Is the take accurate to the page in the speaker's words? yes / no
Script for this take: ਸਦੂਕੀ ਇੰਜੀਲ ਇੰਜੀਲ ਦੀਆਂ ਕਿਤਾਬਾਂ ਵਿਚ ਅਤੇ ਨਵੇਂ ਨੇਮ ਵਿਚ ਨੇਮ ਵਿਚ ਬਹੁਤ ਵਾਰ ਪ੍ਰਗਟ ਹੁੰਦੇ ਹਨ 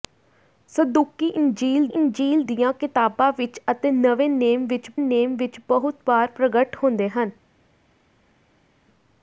yes